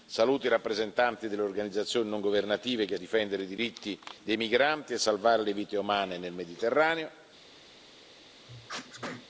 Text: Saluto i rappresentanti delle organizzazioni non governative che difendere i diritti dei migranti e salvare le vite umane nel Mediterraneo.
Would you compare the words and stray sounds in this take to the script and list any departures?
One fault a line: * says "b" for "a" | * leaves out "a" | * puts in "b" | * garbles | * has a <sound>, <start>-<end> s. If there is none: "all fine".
* has a sneeze, 8.5-9.3 s